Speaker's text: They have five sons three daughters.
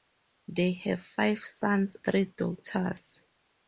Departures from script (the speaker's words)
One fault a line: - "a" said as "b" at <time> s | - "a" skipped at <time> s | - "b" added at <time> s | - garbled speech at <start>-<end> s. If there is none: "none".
none